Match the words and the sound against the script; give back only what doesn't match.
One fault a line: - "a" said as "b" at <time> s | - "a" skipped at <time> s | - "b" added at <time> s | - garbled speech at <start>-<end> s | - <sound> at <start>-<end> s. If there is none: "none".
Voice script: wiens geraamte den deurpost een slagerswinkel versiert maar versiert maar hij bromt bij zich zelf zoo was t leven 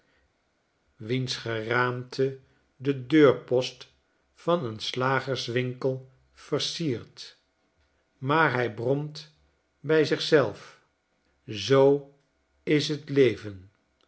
- "van" added at 4.3 s
- "versiert maar" skipped at 8.5 s
- "was" said as "is" at 12.6 s